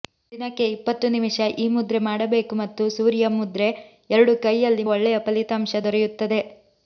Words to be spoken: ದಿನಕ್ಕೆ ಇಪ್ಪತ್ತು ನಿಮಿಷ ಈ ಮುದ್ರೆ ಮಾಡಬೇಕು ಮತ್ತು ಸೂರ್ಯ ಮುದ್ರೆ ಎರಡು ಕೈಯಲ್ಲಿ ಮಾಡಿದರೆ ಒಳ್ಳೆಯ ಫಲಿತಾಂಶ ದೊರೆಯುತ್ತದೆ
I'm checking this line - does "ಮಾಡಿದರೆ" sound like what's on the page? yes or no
no